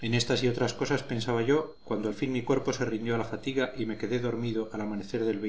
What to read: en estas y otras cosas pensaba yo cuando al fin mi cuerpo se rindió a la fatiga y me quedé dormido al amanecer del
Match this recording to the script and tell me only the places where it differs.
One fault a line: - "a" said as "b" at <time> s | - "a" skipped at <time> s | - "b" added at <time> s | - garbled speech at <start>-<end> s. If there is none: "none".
none